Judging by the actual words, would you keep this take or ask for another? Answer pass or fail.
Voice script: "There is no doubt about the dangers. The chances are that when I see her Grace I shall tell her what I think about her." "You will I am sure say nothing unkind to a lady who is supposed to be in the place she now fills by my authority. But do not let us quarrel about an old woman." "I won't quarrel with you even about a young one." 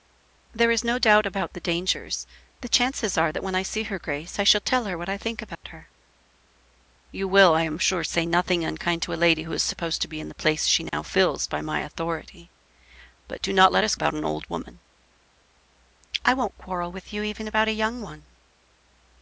fail